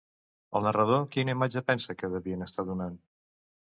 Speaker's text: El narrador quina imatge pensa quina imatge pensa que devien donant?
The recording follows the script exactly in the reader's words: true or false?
false